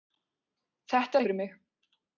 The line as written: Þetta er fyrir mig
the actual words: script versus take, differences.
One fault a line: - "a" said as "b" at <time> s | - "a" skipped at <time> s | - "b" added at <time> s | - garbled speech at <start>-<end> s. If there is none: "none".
none